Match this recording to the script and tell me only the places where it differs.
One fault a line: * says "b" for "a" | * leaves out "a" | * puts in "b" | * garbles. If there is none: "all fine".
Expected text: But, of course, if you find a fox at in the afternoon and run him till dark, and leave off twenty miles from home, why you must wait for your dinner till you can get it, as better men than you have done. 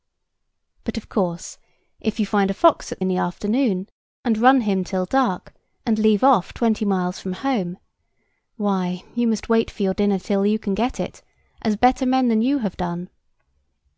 all fine